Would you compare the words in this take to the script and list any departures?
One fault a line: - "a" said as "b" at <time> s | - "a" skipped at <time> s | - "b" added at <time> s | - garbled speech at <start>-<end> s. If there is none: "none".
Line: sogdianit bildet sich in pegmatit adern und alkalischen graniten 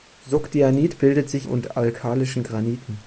- "in pegmatit adern" skipped at 1.5 s